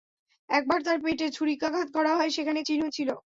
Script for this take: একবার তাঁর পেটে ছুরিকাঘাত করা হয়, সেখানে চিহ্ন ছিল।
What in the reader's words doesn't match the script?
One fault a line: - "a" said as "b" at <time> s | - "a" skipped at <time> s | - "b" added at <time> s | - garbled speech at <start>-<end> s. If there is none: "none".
none